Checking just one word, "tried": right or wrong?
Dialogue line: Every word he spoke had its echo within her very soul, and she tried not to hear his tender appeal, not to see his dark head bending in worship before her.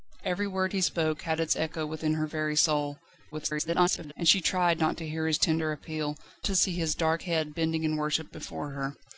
right